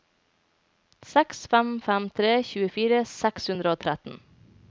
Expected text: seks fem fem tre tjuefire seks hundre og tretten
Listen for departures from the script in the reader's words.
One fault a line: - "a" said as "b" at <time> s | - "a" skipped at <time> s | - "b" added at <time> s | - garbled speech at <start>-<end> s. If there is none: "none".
none